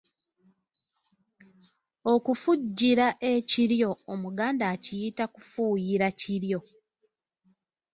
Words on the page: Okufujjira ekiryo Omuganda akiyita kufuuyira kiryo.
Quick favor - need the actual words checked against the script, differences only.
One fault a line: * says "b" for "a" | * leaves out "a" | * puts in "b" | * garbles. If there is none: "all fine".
all fine